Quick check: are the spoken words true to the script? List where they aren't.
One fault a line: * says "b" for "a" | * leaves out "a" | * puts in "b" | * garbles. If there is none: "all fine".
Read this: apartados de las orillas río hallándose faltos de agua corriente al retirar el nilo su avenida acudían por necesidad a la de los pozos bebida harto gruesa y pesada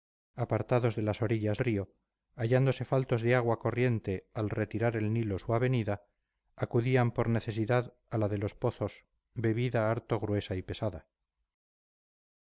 all fine